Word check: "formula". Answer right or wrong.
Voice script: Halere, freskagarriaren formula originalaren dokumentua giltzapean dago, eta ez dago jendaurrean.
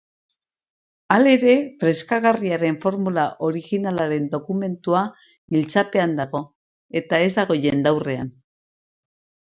right